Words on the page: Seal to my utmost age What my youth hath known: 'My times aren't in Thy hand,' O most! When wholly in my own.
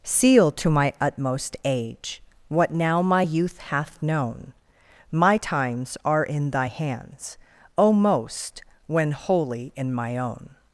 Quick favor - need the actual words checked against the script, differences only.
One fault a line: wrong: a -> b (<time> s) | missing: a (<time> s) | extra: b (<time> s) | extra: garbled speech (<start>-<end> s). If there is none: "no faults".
extra: now (2.7 s)
wrong: aren't -> are (6.0 s)
wrong: hand -> hands (6.6 s)